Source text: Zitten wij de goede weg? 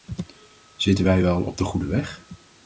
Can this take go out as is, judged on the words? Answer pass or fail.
fail